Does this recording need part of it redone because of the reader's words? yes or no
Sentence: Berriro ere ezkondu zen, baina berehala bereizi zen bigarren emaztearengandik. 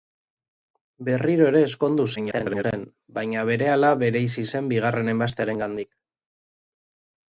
yes